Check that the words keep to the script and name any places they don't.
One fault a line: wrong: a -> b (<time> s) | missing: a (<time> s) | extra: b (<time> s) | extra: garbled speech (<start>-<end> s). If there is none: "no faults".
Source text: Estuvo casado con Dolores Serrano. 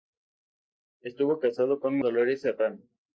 no faults